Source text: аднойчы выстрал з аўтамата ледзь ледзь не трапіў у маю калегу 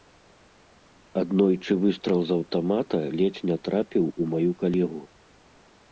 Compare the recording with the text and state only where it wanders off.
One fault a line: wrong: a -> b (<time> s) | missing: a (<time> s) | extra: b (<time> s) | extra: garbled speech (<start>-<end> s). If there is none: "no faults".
missing: ледзь (3.5 s)